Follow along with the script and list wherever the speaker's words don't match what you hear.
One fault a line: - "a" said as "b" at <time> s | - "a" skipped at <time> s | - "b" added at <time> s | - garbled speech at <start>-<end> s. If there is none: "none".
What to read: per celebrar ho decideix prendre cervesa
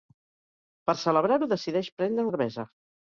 none